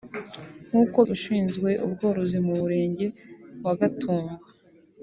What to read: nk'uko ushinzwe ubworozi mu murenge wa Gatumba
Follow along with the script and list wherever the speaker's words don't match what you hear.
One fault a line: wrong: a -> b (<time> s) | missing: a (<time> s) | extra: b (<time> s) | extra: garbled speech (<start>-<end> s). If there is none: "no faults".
no faults